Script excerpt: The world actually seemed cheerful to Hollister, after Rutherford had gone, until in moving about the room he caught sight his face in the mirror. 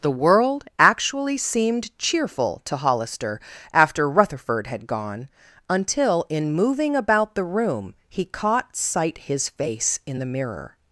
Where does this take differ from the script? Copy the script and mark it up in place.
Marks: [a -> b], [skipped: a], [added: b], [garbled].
The world actually seemed cheerful to Hollister, after Rutherford had gone, until in moving about the room he caught sight his face in the mirror.